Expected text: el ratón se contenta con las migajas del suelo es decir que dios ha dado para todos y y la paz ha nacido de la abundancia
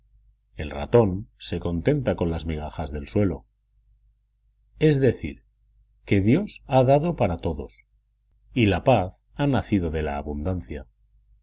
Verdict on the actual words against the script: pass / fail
fail